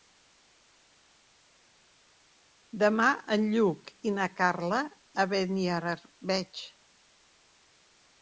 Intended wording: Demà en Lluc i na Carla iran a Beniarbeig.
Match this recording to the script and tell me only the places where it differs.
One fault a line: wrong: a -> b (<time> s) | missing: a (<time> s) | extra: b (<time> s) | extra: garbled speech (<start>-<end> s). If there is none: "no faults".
missing: iran (4.8 s)